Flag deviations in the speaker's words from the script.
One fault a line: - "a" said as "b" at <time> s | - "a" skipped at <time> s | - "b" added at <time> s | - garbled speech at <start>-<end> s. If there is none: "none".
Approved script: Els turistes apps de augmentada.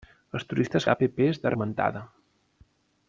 none